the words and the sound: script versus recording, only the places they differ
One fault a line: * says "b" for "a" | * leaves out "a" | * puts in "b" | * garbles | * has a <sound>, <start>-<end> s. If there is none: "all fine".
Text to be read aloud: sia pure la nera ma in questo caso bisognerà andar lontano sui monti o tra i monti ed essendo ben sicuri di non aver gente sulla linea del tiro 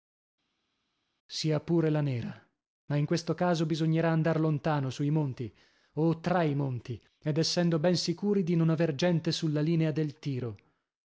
all fine